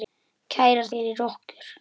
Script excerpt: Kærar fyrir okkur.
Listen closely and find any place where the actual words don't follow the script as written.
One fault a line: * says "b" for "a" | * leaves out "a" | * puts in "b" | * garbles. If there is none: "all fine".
all fine